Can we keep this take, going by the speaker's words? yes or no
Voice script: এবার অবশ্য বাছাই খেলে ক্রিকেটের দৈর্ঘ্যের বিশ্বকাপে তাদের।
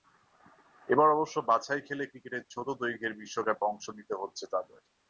no